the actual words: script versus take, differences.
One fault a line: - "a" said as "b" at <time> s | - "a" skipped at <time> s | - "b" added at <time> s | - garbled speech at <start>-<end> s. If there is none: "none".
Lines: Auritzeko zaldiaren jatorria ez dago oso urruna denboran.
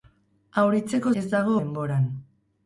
- "zaldiaren jatorria" skipped at 1.1 s
- "oso urruna" skipped at 1.6 s